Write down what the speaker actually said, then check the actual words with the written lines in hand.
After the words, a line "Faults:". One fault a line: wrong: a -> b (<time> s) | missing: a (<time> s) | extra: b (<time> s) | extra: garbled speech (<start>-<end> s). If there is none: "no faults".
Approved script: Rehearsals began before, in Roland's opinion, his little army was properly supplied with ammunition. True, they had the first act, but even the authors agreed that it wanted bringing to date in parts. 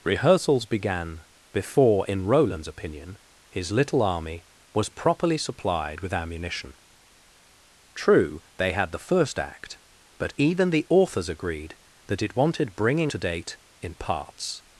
Rehearsals began before, in Roland's opinion, his little army was properly supplied with ammunition. True, they had the first act, but even the authors agreed that it wanted bringing to date in parts.
Faults:
no faults